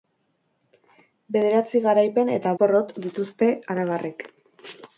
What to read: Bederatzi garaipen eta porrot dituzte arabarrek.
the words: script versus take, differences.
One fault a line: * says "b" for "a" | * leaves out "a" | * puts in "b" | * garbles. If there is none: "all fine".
all fine